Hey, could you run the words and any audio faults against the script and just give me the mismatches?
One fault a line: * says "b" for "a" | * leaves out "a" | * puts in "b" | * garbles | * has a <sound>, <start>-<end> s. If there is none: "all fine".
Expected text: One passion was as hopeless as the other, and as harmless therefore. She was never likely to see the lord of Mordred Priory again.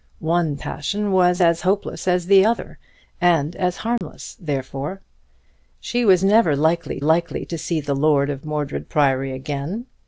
* has a dropout, 4.0-4.0 s
* puts in "likely"